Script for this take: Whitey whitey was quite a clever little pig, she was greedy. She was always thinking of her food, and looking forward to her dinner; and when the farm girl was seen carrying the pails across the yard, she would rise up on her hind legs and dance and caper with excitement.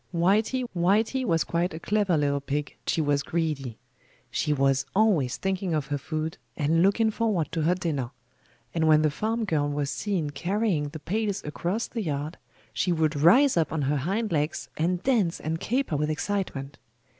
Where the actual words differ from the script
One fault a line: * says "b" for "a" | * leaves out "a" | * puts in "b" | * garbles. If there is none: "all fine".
all fine